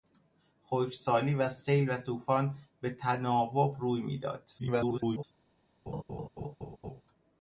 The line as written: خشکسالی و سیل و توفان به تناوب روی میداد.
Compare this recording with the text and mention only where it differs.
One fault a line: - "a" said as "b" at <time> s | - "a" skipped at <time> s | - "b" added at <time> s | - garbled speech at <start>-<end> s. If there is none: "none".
- garbled speech at 4.6-5.2 s